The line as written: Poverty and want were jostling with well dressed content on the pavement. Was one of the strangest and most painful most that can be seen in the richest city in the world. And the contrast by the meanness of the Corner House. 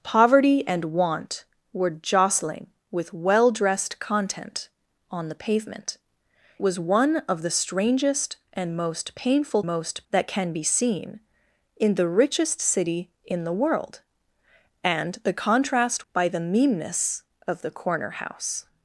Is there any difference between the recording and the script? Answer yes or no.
no